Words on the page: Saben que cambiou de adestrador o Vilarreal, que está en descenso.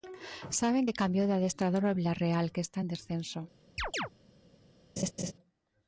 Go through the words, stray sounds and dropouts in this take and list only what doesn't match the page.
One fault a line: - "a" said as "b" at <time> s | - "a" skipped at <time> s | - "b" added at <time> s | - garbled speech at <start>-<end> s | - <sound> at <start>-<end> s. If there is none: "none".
- chirp at 3.8-4.1 s
- laugh at 5.0-5.3 s